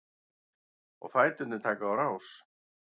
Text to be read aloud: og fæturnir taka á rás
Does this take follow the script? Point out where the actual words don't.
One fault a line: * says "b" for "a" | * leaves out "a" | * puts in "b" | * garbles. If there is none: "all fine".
all fine